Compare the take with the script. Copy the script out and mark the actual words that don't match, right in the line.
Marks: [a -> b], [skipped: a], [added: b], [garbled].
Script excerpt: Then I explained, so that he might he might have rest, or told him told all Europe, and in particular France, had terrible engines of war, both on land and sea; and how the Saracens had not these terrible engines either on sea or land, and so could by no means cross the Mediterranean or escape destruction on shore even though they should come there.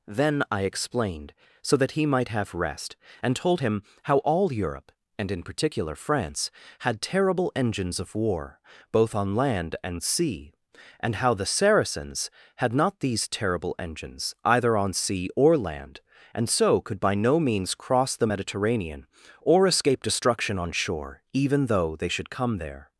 Then I explained, so that he might [skipped: he might] have rest, [or -> and] told him [told -> how] all Europe, and in particular France, had terrible engines of war, both on land and sea; and how the Saracens had not these terrible engines either on sea or land, and so could by no means cross the Mediterranean or escape destruction on shore even though they should come there.